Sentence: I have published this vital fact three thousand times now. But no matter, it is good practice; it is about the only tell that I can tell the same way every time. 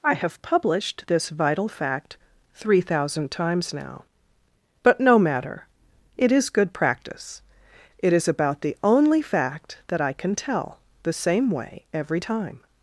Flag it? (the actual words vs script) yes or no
yes